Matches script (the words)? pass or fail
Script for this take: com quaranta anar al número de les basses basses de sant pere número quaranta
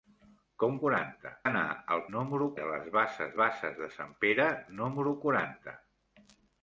pass